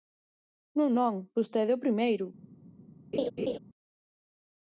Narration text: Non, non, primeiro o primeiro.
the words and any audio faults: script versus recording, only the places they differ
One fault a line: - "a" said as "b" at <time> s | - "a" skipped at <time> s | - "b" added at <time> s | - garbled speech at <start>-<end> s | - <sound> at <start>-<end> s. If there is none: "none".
- "primeiro" said as "vostede" at 1.4 s
- laugh at 3.1-3.6 s